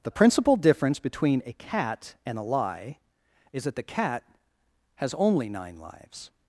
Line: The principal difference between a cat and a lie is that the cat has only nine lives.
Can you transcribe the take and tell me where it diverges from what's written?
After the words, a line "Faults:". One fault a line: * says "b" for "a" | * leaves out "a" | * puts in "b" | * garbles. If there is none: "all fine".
The principal difference between a cat and a lie is that the cat has only nine lives.
Faults:
all fine